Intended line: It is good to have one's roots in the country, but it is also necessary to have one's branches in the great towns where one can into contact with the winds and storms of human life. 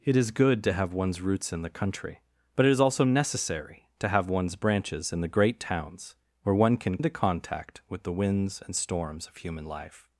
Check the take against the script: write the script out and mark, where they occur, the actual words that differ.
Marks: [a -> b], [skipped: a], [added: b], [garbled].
It is good to have one's roots in the country, but it is also necessary to have one's branches in the great towns where one can into contact with the winds and storms of human life.